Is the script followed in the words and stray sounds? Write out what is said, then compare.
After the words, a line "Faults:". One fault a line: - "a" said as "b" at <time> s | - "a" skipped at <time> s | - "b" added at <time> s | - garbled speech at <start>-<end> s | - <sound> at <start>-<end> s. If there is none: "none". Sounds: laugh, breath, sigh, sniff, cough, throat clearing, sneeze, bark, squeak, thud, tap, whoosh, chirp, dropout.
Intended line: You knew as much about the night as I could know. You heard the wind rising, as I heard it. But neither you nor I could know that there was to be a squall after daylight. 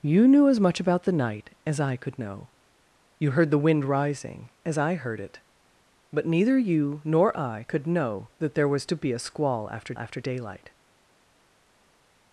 You knew as much about the night as I could know. You heard the wind rising, as I heard it. But neither you nor I could know that there was to be a squall after after daylight.
Faults:
- "after" added at 10.0 s